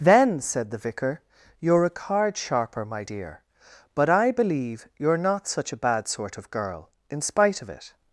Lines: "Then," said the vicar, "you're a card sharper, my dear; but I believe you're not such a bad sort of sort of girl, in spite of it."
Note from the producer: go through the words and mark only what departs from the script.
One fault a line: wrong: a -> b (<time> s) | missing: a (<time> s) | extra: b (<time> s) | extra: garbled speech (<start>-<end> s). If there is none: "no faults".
missing: sort of (6.5 s)